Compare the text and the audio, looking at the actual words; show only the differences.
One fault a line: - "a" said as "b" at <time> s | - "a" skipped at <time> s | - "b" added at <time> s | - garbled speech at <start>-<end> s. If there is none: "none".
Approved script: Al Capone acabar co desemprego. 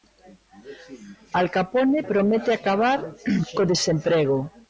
- "promete" added at 2.1 s